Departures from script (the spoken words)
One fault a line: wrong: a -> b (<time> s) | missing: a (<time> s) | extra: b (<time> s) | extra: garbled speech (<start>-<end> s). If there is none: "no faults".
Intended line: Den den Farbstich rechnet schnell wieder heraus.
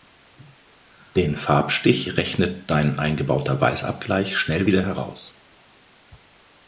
missing: den (1.4 s)
extra: dein eingebauter Weißabgleich (2.7 s)